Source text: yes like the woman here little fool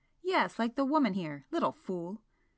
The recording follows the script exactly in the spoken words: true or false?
true